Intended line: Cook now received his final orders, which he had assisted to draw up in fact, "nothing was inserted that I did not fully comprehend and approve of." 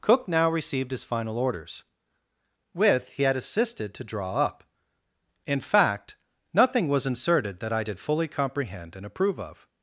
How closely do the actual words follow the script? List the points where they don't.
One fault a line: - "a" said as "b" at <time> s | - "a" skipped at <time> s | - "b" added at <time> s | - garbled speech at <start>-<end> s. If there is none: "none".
- "which" said as "with" at 2.7 s
- "not" skipped at 8.0 s